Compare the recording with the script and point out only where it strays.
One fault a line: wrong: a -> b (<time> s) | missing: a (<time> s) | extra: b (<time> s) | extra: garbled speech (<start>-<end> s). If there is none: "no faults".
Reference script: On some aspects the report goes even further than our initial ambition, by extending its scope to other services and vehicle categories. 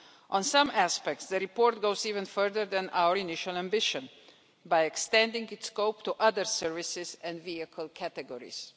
no faults